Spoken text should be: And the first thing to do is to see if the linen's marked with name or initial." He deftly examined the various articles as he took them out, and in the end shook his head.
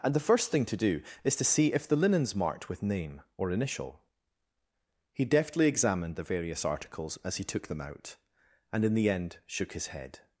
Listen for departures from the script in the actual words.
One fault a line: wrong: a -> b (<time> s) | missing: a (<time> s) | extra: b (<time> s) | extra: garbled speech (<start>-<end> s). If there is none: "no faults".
no faults